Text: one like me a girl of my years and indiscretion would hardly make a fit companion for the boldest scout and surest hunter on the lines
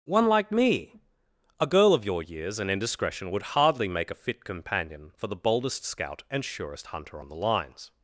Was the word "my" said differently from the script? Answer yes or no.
yes